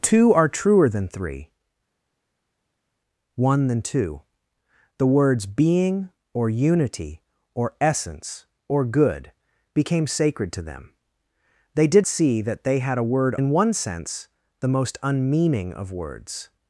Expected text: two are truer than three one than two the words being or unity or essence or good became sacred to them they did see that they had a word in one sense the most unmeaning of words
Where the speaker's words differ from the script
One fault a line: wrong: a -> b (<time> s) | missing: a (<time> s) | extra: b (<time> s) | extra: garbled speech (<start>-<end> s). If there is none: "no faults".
no faults